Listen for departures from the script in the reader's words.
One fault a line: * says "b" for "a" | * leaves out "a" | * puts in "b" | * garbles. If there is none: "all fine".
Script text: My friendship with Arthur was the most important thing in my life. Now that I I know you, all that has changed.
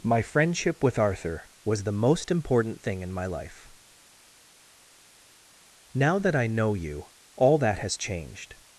* leaves out "I"